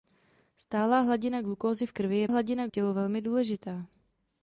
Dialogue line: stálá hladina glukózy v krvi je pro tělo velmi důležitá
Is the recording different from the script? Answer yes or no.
yes